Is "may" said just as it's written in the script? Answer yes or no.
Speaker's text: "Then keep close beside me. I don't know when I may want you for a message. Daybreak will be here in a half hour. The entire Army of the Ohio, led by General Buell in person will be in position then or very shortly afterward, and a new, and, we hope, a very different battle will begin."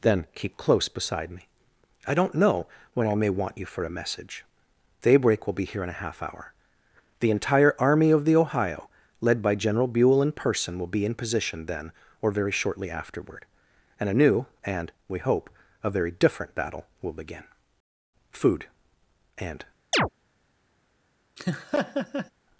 yes